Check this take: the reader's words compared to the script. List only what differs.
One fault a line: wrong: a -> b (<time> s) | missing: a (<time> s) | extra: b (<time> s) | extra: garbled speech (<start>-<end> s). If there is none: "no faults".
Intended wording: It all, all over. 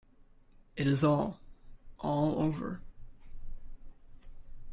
extra: is (0.9 s)